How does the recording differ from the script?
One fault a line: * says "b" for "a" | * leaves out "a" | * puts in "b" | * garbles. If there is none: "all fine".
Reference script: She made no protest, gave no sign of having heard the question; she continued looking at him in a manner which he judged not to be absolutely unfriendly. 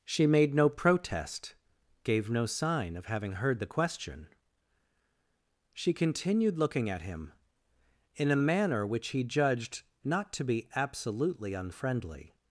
all fine